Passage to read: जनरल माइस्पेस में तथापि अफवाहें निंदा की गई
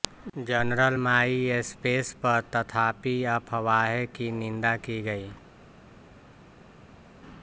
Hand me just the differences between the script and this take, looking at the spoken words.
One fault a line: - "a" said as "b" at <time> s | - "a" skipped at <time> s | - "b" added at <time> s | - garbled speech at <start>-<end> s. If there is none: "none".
- "में" said as "पर" at 2.2 s
- "की" added at 4.1 s